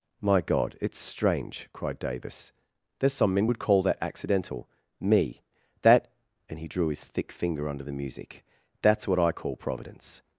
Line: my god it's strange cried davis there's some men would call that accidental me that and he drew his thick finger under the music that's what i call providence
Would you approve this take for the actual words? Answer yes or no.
yes